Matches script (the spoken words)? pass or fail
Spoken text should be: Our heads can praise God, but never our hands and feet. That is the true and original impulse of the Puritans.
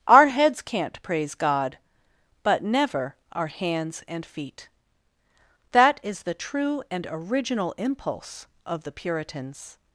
fail